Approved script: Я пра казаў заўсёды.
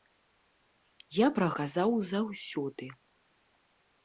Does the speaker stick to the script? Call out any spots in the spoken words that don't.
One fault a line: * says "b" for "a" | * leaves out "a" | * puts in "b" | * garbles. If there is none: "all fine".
all fine